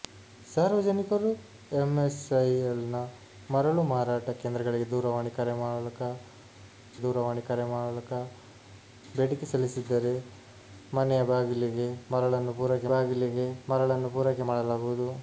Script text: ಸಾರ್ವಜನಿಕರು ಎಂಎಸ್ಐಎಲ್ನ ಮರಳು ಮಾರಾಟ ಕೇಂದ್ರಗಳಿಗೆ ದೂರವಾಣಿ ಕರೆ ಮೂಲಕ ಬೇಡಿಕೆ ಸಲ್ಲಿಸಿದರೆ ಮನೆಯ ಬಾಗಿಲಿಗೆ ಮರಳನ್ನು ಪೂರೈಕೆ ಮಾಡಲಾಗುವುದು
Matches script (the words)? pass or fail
fail